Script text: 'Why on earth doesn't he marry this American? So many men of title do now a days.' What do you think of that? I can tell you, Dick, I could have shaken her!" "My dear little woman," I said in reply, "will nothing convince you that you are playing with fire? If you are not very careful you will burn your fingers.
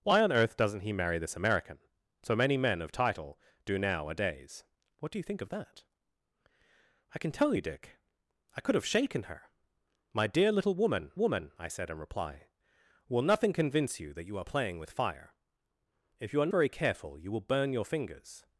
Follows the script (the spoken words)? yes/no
no